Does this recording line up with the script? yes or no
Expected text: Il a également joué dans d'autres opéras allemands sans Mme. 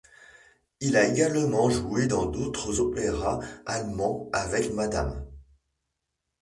no